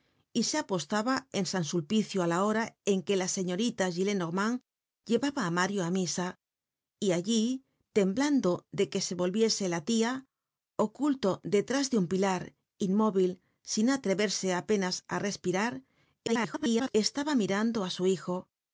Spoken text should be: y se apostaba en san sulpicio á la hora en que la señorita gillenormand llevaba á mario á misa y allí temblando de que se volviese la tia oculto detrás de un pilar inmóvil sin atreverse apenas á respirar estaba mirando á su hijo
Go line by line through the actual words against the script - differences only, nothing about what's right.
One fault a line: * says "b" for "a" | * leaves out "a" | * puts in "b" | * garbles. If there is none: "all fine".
* garbles